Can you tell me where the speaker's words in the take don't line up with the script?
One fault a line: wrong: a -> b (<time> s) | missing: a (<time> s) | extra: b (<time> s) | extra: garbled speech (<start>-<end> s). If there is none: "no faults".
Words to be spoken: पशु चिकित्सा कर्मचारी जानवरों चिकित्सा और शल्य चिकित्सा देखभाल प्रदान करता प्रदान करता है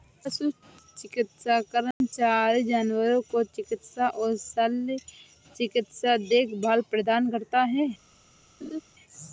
extra: को (3.3 s)
missing: प्रदान करता (7.6 s)